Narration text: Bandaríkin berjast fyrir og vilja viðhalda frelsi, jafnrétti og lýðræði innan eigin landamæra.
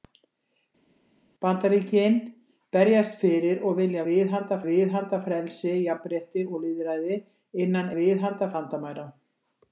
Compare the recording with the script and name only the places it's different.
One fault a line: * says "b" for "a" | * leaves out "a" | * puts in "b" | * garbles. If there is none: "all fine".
* puts in "viðhalda"
* says "viðhalda" for "eigin"